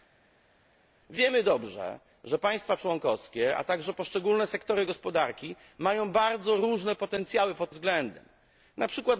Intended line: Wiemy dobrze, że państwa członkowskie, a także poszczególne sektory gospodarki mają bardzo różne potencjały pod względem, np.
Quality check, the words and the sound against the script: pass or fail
pass